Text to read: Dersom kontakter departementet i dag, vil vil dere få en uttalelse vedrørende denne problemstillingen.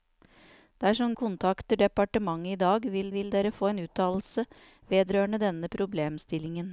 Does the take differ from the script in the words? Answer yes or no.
no